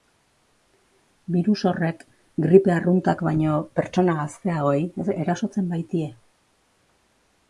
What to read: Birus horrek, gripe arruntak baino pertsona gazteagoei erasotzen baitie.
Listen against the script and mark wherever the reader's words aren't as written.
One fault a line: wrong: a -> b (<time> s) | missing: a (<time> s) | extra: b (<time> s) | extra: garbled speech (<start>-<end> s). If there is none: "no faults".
no faults